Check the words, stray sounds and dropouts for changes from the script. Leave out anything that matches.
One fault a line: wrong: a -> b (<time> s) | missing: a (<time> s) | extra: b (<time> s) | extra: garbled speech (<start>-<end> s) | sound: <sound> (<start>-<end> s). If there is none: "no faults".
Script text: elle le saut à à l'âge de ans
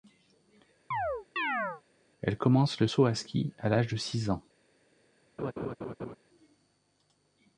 sound: chirp (0.9-1.8 s)
extra: commence (2.4 s)
extra: ski (3.1 s)
extra: six (4.0 s)
sound: laugh (5.4-6.2 s)